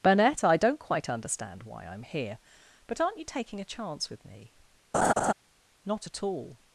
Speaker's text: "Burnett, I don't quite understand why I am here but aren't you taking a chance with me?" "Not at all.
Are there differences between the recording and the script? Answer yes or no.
no